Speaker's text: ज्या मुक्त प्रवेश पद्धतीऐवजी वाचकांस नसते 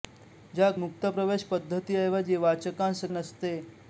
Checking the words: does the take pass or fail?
pass